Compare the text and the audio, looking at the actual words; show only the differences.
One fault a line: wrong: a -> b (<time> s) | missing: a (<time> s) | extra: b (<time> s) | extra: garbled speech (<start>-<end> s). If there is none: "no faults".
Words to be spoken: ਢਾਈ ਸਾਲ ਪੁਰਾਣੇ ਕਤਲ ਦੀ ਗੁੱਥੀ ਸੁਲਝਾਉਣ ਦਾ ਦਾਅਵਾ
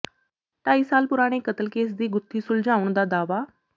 extra: ਕੇਸ (1.7 s)